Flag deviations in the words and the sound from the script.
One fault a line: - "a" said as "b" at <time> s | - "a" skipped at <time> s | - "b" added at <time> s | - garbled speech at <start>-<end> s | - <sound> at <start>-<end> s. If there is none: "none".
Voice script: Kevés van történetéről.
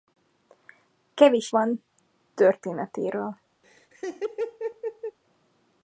- laugh at 3.6-5.2 s